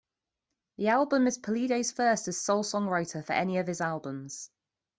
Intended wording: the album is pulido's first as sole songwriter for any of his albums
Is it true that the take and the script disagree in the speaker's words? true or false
false